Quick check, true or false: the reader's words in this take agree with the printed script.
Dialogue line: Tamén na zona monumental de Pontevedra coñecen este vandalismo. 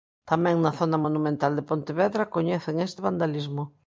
true